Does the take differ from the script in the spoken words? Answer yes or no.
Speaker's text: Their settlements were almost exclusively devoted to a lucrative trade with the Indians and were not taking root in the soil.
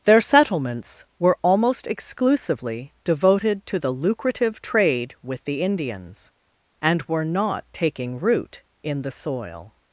yes